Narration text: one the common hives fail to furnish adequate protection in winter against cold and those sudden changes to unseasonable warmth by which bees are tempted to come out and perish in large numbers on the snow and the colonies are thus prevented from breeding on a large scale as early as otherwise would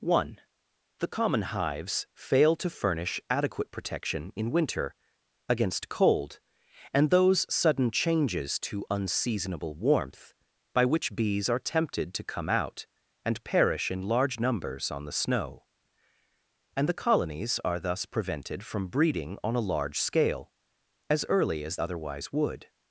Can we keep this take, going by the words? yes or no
yes